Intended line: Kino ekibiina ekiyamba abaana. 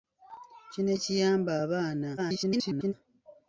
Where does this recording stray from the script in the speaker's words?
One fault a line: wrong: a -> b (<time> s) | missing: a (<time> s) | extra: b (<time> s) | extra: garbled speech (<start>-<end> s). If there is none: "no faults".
missing: ekibiina (0.9 s)
extra: garbled speech (2.2-2.9 s)